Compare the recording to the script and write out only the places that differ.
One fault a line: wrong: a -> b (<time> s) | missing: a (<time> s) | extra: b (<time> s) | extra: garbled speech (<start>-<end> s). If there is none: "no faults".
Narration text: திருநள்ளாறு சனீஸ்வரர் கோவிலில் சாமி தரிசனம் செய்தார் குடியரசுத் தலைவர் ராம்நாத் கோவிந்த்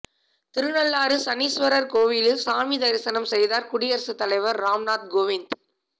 no faults